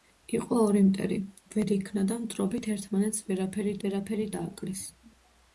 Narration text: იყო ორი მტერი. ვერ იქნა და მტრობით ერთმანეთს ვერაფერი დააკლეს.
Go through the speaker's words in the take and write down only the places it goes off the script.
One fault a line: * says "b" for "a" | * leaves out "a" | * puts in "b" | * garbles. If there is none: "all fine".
* puts in "ვერაფერი"